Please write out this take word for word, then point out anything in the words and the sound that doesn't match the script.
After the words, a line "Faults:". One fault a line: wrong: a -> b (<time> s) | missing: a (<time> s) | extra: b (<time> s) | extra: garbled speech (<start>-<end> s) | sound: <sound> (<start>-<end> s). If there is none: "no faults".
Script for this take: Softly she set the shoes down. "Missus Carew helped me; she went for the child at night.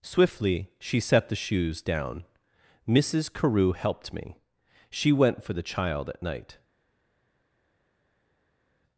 Swiftly she set the shoes down. "Missus Carew helped me; she went for the child at night.
Faults:
wrong: Softly -> Swiftly (0.0 s)